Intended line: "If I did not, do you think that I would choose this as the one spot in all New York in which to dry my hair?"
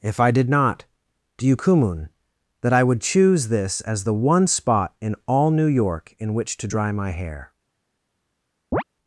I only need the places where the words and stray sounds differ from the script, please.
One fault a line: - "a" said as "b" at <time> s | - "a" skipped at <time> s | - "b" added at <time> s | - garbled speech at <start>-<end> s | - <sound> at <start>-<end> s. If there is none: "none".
- "think" said as "kumun" at 1.5 s
- chirp at 8.7-8.8 s